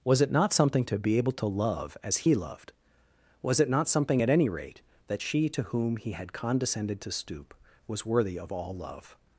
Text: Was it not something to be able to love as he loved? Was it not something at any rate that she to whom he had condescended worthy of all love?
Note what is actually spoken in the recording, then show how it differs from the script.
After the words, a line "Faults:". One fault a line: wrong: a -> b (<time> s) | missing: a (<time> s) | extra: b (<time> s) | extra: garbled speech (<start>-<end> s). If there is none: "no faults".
Was it not something to be able to love as he loved? Was it not something at any rate that she to whom he had condescended to stoop was worthy of all love?
Faults:
extra: to stoop was (7.0 s)